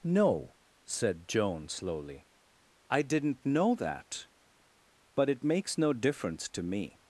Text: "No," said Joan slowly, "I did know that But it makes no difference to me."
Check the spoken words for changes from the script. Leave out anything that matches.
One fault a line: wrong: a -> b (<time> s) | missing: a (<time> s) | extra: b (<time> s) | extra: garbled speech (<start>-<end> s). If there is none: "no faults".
wrong: did -> didn't (3.0 s)